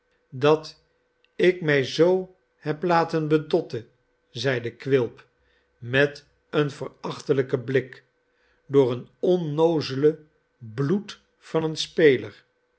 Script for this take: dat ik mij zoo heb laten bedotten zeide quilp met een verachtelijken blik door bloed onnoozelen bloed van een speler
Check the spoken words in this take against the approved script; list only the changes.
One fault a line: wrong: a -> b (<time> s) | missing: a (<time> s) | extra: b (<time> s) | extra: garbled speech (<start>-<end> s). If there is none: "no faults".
wrong: bloed -> een (8.9 s)